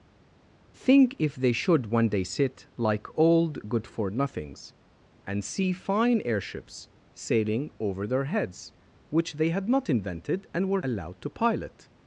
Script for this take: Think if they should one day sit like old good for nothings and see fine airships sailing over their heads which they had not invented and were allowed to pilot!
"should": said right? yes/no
yes